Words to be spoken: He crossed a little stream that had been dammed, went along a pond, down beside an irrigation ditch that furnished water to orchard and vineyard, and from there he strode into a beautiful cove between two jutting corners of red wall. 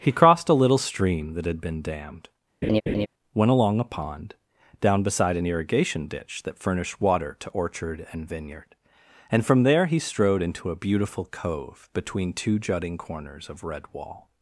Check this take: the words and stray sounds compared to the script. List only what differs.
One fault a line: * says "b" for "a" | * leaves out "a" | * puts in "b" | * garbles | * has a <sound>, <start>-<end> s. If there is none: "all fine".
* has a laugh, 2.6-3.1 s